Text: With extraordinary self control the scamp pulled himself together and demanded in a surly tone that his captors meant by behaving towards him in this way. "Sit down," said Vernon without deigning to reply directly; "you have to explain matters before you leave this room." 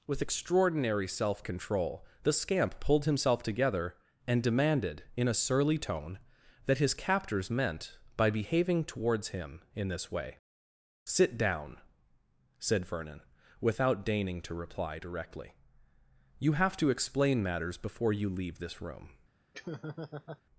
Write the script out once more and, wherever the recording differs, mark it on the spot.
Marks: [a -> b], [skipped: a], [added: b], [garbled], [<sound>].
With extraordinary self control the scamp pulled himself together and demanded in a surly tone that his captors meant by behaving towards him in this way. "Sit down," said Vernon without deigning to reply directly; "you have to explain matters before you leave this room." [laugh]